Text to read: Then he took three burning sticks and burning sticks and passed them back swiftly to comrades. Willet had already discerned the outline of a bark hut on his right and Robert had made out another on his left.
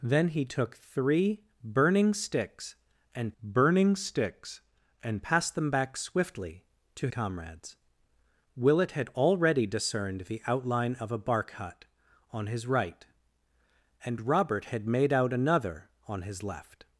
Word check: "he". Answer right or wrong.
right